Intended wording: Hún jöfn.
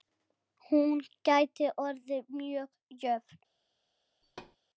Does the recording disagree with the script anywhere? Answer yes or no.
yes